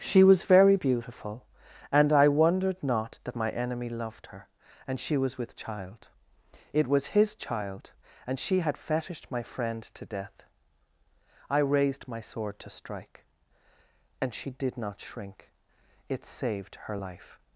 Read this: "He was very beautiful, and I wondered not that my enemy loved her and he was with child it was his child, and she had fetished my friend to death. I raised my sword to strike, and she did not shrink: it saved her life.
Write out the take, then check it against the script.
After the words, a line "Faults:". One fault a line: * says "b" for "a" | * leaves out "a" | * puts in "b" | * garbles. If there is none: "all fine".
"She was very beautiful, and I wondered not that my enemy loved her and she was with child it was his child, and she had fetished my friend to death. I raised my sword to strike, and she did not shrink: it saved her life.
Faults:
* says "She" for "He"
* says "she" for "he"